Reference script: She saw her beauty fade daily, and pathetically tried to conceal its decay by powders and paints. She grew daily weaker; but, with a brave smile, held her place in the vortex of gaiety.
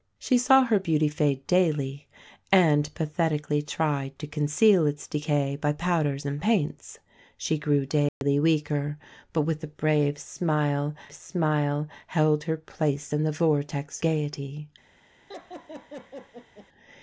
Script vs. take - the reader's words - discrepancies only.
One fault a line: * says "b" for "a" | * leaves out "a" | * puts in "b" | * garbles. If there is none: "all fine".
* puts in "smile"
* leaves out "of"